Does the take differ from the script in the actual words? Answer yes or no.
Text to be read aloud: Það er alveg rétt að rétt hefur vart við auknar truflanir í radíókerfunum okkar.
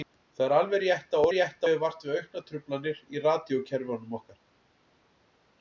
no